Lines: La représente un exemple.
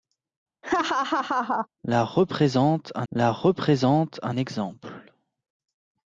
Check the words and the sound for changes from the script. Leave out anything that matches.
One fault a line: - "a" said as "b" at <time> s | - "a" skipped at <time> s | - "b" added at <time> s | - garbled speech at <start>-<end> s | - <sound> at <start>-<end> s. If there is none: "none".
- laugh at 0.6-1.7 s
- "la représente un" added at 3.1 s